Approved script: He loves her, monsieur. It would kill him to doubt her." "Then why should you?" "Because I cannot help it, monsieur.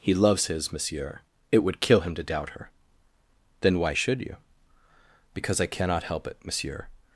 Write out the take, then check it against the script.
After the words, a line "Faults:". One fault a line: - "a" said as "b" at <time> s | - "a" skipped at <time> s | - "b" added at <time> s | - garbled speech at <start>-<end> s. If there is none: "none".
He loves his, monsieur. It would kill him to doubt her." "Then why should you?" "Because I cannot help it, monsieur.
Faults:
- "her" said as "his" at 0.5 s